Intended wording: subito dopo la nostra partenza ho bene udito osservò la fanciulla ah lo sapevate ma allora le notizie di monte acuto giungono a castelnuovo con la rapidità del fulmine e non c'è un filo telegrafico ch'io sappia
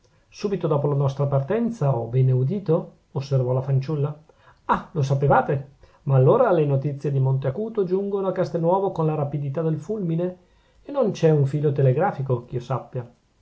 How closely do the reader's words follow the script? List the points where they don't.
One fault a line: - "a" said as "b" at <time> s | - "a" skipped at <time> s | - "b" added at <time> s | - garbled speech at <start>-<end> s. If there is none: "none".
none